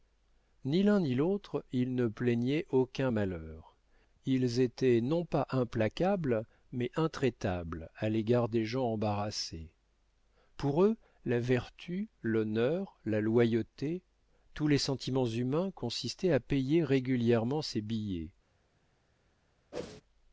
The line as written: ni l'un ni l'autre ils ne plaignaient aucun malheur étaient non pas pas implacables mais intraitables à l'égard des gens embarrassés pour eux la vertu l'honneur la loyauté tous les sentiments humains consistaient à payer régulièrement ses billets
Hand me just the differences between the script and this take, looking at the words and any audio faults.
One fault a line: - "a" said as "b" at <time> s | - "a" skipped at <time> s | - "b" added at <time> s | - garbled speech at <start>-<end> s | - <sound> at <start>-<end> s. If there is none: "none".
- "ils" added at 4.2 s
- "pas" skipped at 5.5 s
- whoosh at 19.7-20.0 s